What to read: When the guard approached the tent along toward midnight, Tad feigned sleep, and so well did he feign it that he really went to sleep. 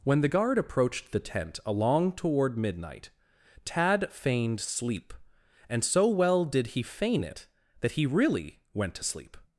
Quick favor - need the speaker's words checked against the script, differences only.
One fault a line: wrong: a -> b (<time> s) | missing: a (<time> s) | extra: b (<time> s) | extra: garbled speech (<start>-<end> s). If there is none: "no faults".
no faults